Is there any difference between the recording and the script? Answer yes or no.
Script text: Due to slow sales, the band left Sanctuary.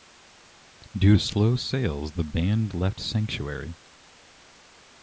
no